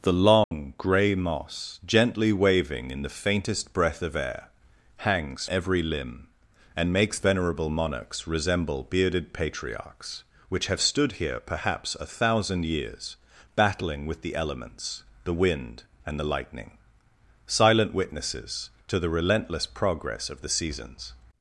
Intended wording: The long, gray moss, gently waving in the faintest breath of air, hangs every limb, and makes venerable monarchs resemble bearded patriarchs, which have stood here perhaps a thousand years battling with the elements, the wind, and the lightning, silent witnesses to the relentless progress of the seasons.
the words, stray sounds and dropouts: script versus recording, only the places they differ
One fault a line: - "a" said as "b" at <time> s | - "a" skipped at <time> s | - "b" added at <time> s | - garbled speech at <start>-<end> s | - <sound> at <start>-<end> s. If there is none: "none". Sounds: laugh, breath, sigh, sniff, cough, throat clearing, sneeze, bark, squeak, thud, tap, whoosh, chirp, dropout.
- dropout at 0.4-0.5 s